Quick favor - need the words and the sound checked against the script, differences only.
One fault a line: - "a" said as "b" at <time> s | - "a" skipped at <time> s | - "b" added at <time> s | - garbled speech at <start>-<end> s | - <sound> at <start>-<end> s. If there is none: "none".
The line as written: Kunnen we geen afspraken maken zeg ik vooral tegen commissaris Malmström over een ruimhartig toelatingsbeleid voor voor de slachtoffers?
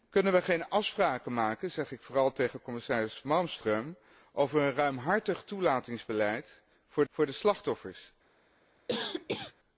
- cough at 8.9-9.5 s